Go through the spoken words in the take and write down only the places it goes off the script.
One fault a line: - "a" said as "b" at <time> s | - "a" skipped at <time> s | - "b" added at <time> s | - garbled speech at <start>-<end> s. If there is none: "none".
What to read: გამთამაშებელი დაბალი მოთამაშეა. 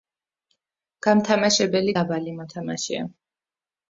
none